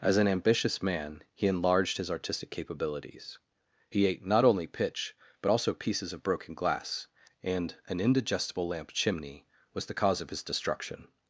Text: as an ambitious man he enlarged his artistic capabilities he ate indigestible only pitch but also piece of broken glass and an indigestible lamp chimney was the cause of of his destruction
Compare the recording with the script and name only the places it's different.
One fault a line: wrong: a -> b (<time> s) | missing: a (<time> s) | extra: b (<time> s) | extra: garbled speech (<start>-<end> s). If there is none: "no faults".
wrong: indigestible -> not (4.2 s)
wrong: piece -> pieces (5.7 s)
missing: of (10.3 s)